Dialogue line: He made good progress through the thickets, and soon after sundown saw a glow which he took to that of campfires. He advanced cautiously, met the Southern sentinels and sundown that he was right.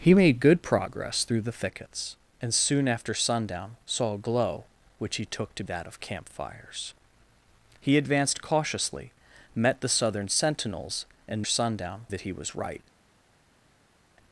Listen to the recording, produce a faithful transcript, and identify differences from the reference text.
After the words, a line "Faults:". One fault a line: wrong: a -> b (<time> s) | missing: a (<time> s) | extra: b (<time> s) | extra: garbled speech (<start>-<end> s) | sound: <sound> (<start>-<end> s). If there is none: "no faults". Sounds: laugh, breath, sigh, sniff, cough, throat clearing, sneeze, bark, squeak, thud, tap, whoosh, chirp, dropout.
He made good progress through the thickets, and soon after sundown saw a glow which he took to that of campfires. He advanced cautiously, met the Southern sentinels and sundown that he was right.
Faults:
no faults